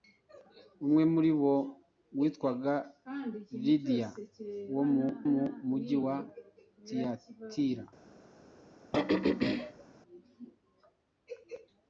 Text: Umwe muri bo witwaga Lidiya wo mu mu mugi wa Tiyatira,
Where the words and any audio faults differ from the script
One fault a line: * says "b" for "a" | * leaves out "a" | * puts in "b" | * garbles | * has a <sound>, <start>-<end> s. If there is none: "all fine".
* has a throat clearing, 8.9-9.8 s